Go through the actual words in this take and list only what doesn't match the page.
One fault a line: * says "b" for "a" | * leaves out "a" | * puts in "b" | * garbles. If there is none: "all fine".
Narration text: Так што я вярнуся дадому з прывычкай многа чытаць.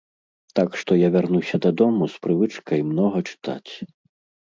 all fine